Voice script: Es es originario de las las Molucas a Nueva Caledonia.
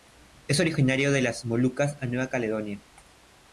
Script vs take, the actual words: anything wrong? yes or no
yes